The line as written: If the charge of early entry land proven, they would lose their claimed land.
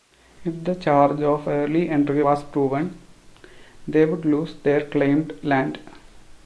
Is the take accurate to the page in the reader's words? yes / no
no